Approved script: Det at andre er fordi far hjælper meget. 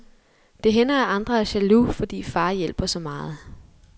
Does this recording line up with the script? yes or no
no